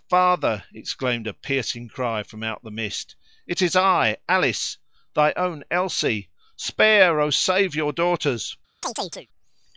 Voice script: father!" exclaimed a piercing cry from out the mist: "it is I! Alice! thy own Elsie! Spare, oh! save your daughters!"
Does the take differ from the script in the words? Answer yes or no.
no